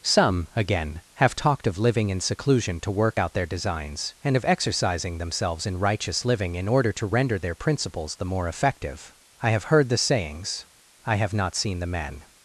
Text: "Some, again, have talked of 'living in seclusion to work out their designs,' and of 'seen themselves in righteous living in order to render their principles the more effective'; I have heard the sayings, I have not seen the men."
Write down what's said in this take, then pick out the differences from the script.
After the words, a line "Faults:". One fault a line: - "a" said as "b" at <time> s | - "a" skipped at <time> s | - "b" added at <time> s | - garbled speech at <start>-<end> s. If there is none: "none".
"Some, again, have talked of 'living in seclusion to work out their designs,' and of 'exercising themselves in righteous living in order to render their principles the more effective'; I have heard the sayings, I have not seen the men."
Faults:
- "seen" said as "exercising" at 4.4 s